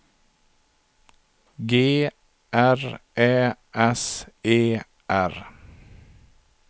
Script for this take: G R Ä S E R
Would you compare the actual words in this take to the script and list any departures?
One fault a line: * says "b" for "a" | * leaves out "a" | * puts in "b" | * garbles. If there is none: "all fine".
all fine